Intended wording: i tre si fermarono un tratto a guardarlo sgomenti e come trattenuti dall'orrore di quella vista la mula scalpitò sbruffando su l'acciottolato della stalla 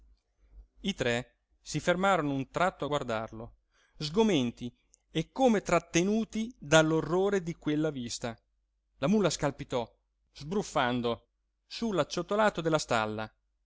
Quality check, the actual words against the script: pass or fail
pass